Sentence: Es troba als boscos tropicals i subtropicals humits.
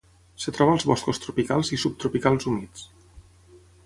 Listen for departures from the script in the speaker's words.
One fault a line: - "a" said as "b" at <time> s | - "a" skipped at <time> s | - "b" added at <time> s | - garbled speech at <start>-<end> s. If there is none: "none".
none